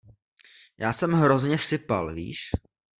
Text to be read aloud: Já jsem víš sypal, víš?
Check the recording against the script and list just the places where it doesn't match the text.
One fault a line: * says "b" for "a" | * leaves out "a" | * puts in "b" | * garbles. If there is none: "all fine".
* says "hrozně" for "víš"